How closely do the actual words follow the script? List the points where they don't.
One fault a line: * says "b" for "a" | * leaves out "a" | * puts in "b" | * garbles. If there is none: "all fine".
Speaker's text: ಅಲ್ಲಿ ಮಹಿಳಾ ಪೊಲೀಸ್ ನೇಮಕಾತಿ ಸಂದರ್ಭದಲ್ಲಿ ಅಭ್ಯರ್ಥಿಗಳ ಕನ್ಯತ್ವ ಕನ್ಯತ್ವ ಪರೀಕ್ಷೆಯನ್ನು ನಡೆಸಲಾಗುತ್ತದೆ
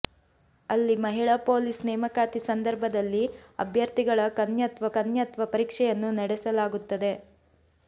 all fine